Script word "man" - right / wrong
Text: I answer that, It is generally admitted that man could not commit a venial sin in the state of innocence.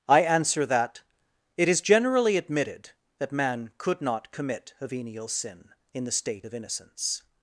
right